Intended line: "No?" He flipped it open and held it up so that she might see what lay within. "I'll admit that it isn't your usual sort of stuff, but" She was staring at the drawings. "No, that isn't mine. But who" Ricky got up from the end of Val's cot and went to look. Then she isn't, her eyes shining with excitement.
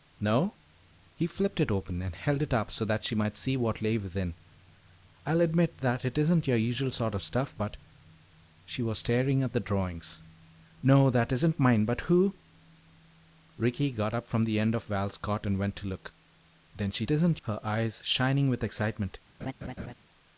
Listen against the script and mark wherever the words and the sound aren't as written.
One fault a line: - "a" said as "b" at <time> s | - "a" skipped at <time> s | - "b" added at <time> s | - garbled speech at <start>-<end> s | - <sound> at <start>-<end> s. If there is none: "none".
- laugh at 19.4-19.9 s